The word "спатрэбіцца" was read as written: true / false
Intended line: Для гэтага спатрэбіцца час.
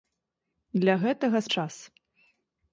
false